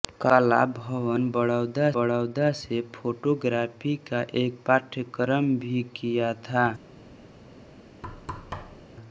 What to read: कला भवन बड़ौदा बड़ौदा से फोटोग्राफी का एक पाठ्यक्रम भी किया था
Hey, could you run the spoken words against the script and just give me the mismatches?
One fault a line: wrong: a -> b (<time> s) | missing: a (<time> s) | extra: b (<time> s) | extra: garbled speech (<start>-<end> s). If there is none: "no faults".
no faults